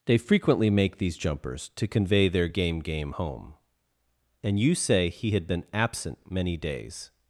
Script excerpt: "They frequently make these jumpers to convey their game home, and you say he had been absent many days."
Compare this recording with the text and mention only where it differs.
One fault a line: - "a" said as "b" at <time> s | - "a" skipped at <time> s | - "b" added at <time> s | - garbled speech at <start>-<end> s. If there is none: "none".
- "game" added at 2.8 s